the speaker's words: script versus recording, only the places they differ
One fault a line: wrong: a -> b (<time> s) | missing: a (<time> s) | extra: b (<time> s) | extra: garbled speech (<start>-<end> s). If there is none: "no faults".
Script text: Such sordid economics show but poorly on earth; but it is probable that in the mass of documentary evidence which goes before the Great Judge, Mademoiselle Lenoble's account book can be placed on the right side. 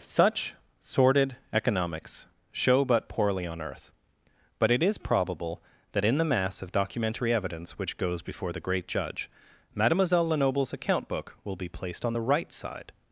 wrong: can -> will (11.4 s)